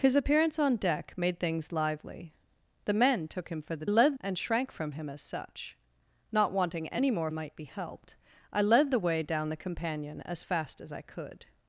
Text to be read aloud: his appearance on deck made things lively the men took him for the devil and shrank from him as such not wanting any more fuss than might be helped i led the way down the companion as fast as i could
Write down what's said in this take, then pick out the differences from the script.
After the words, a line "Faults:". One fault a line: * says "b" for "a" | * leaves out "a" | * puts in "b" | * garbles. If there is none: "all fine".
his appearance on deck made things lively the men took him for the led and shrank from him as such not wanting any more might be helped i led the way down the companion as fast as i could
Faults:
* says "led" for "devil"
* leaves out "fuss than"